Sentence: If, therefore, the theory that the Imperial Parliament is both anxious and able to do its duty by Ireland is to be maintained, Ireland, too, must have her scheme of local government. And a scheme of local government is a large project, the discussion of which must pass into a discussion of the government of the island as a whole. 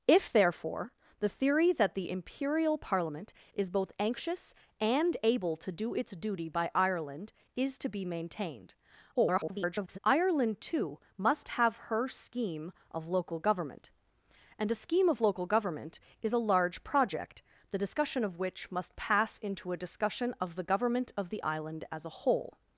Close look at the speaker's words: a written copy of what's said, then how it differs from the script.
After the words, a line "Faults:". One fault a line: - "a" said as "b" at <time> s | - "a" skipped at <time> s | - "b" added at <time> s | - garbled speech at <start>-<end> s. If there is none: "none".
If, therefore, the theory that the Imperial Parliament is both anxious and able to do its duty by Ireland is to be maintained, [garbled] Ireland, too, must have her scheme of local government. And a scheme of local government is a large project, the discussion of which must pass into a discussion of the government of the island as a whole.
Faults:
- garbled speech at 9.1-10.0 s